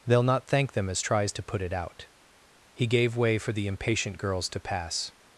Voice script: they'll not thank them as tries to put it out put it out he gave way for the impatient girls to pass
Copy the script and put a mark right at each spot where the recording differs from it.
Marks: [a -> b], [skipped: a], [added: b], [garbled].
they'll not thank them as tries to put it out [skipped: put it out] he gave way for the impatient girls to pass